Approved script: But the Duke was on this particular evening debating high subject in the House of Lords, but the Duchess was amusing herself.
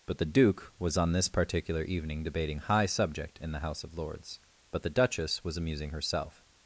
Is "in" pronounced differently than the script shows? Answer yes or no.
no